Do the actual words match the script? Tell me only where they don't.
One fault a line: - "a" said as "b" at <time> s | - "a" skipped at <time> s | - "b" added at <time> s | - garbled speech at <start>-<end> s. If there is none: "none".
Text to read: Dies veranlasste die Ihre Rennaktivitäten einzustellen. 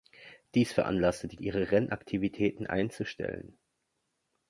none